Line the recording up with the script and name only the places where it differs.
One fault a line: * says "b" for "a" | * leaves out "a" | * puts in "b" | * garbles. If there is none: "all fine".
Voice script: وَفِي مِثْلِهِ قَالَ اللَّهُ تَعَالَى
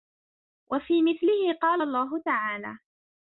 all fine